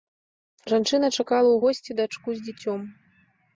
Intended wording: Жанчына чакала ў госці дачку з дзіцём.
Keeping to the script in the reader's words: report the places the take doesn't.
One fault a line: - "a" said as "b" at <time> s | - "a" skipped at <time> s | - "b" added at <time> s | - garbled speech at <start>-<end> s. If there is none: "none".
none